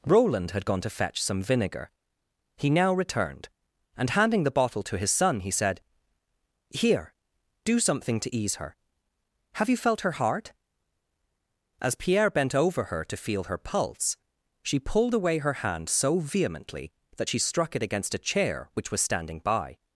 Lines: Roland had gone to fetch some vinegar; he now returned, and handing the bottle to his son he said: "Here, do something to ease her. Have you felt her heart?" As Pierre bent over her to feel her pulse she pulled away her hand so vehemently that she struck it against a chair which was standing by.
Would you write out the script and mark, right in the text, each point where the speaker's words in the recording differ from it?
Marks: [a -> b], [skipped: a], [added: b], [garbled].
Roland had gone to fetch some vinegar; he now returned, and handing the bottle to his son he said: "Here, do something to ease her. Have you felt her heart?" As Pierre bent over her to feel her pulse she pulled away her hand so vehemently that she struck it against a chair which was standing by.